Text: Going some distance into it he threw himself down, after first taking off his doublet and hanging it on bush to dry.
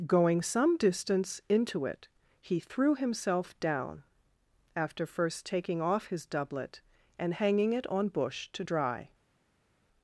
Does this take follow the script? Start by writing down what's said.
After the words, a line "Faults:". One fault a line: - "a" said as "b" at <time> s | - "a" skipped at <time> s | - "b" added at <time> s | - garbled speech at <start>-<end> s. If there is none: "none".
Going some distance into it he threw himself down, after first taking off his doublet and hanging it on bush to dry.
Faults:
none